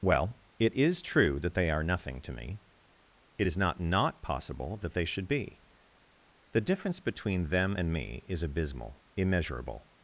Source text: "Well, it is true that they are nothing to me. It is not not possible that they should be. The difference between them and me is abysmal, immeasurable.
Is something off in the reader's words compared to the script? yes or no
no